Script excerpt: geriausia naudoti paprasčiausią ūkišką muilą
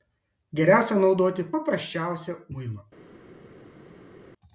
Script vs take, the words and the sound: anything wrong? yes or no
yes